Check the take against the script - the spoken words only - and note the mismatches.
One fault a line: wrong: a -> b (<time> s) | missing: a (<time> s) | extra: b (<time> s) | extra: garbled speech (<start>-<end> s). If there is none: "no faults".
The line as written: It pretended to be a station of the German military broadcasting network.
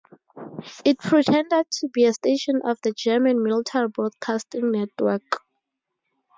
no faults